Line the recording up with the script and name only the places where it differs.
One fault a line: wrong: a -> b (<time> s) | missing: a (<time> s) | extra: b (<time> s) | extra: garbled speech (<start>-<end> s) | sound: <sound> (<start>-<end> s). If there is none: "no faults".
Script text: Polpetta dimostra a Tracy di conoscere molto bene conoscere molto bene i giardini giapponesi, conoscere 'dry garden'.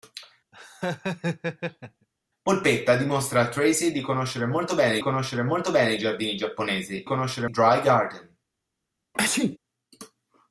sound: laugh (0.5-2.1 s)
sound: sneeze (9.1-9.6 s)